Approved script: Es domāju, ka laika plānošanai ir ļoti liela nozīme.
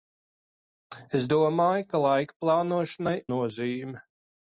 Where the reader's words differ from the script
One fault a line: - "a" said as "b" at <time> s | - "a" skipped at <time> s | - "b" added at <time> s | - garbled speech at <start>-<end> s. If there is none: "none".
- "ir ļoti liela" skipped at 3.2 s